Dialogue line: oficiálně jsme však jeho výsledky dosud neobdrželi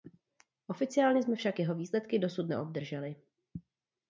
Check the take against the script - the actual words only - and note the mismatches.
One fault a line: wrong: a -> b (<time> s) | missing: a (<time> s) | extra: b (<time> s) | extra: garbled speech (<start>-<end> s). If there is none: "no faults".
no faults